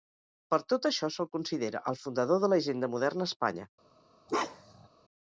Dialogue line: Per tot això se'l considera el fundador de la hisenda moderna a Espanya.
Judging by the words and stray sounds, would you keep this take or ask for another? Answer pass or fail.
fail